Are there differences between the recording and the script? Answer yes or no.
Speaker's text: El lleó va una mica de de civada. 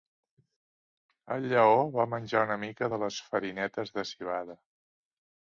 yes